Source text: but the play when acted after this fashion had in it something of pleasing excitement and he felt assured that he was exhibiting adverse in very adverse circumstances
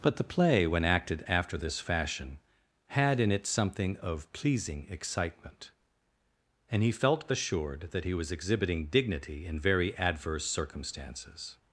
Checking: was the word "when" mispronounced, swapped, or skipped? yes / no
no